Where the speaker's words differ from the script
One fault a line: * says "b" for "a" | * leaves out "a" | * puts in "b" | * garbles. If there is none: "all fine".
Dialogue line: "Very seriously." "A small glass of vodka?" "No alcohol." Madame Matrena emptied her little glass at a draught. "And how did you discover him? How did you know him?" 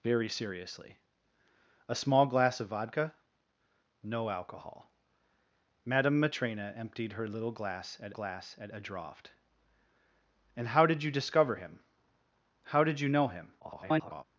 * puts in "glass at"
* garbles